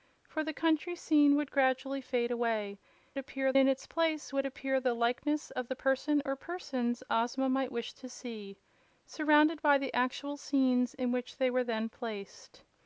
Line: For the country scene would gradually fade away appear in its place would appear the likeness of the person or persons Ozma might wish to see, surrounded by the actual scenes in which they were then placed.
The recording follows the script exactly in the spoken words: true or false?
true